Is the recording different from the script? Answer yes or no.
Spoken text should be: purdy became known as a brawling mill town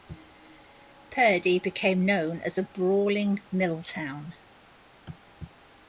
no